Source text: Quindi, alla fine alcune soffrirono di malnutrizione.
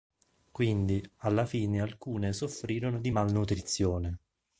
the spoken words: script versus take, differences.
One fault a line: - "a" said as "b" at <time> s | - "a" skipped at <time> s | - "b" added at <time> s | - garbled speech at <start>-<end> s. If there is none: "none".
none